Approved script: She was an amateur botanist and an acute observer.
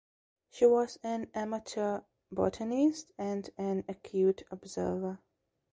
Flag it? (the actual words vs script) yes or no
no